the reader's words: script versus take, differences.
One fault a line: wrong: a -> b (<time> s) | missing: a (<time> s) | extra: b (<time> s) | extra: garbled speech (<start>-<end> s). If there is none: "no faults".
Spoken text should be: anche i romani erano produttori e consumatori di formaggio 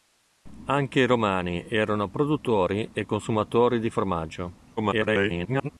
extra: garbled speech (4.8-5.7 s)